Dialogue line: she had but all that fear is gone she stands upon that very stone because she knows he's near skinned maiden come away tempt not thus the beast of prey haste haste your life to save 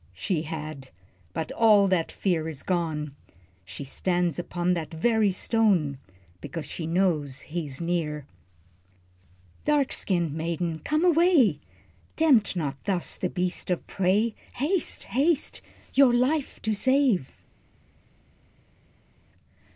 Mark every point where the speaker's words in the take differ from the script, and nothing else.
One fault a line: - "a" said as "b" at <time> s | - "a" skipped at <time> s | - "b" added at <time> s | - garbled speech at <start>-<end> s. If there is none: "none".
- "dark" added at 9.7 s